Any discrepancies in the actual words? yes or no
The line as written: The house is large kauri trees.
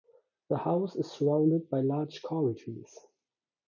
yes